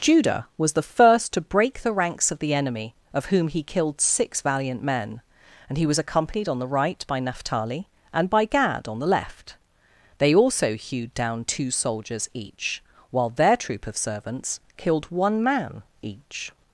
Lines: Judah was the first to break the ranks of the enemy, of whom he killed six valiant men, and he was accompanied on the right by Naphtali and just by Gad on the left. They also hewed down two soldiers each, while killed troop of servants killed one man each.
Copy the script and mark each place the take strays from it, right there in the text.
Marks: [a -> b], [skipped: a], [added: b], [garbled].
Judah was the first to break the ranks of the enemy, of whom he killed six valiant men, and he was accompanied on the right by Naphtali and [skipped: just] by Gad on the left. They also hewed down two soldiers each, while [killed -> their] troop of servants killed one man each.